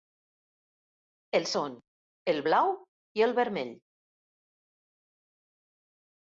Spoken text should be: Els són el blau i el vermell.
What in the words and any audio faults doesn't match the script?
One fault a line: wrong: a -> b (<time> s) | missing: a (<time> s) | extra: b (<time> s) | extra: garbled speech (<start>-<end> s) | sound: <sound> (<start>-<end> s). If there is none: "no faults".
no faults